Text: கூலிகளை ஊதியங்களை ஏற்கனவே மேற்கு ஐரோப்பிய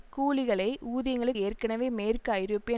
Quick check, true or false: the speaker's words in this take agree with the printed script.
true